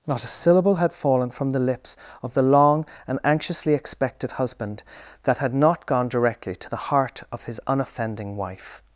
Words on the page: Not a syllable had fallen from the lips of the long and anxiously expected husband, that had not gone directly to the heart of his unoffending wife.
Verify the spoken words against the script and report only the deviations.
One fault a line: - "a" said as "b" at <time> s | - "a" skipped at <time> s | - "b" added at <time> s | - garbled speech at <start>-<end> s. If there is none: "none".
none